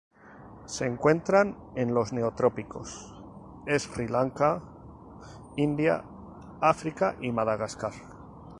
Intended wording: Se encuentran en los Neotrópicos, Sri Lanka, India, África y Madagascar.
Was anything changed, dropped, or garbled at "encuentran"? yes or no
no